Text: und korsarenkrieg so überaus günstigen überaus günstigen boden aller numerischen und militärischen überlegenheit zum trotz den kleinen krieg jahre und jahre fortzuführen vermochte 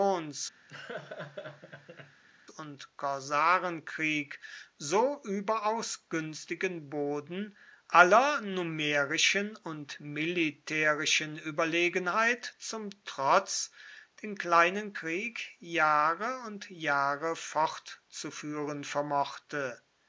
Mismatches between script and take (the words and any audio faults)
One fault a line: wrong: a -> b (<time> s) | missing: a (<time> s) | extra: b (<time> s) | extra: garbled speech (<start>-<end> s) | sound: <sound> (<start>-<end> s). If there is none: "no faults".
sound: laugh (0.7-2.2 s)
missing: überaus günstigen (6.9 s)